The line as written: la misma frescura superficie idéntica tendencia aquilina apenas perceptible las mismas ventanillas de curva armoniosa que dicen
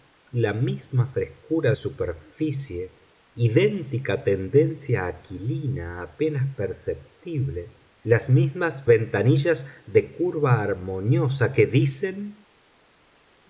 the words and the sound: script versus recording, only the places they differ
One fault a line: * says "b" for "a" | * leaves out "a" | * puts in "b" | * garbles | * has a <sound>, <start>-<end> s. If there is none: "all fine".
all fine